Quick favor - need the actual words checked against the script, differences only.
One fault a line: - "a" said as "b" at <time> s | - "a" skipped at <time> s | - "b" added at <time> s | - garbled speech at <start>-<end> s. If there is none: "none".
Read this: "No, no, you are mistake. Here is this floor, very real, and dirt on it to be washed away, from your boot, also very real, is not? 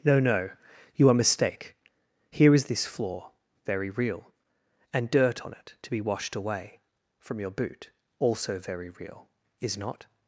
none